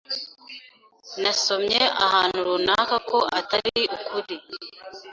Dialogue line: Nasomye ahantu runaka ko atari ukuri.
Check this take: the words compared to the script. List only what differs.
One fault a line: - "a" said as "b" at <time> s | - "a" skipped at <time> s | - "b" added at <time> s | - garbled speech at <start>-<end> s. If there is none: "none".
none